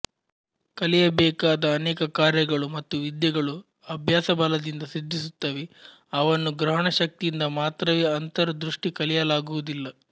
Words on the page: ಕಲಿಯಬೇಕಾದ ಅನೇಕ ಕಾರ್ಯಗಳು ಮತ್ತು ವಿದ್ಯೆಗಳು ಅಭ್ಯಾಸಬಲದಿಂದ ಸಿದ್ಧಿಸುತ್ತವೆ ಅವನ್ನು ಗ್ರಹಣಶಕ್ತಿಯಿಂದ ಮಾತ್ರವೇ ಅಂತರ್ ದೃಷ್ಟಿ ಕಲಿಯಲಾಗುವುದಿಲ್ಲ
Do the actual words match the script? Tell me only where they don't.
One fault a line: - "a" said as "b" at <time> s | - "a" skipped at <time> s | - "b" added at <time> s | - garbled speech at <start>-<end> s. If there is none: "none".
none